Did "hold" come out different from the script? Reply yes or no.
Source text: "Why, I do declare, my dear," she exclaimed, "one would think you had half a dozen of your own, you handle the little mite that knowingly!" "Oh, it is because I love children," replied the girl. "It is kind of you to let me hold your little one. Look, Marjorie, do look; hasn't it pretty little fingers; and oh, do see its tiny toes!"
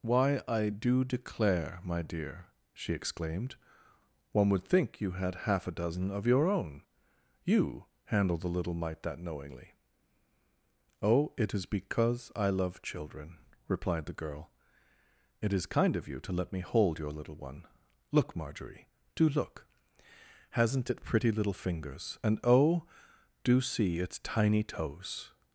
no